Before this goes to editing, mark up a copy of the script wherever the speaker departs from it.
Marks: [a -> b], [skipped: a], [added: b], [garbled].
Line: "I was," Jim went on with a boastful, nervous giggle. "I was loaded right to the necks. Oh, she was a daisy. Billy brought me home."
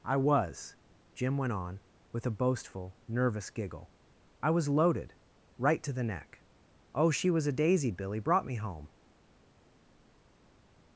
"I was," Jim went on with a boastful, nervous giggle. "I was loaded right to the [necks. -> neck] Oh, she was a daisy. Billy brought me home."